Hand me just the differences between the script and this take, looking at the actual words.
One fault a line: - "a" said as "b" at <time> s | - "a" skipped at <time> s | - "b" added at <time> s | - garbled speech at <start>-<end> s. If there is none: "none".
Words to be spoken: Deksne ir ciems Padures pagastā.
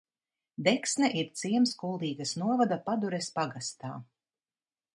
- "Kuldīgas novada" added at 1.8 s